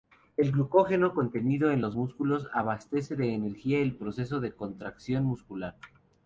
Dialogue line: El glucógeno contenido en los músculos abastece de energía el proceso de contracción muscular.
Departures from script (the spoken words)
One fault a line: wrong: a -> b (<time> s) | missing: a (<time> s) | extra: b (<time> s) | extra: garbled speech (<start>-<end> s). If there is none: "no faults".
no faults